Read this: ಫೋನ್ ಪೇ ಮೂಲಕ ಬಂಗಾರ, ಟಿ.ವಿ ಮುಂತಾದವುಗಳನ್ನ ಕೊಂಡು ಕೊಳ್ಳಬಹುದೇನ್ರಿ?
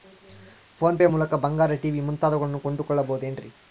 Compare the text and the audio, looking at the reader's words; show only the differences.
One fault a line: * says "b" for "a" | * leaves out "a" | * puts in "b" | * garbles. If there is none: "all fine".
all fine